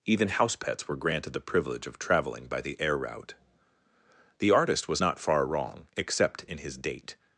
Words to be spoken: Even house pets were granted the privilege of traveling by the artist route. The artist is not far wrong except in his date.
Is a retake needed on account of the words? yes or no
yes